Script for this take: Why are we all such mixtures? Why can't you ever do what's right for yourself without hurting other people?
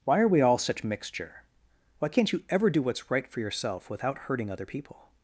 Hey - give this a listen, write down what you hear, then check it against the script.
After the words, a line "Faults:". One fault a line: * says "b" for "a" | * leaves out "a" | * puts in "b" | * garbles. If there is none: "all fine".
Why are we all such mixture? Why can't you ever do what's right for yourself without hurting other people?
Faults:
* says "mixture" for "mixtures"